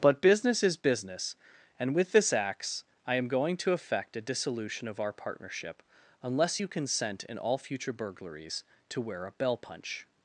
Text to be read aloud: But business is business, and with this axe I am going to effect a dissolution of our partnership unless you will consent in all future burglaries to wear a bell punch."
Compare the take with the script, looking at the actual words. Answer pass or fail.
fail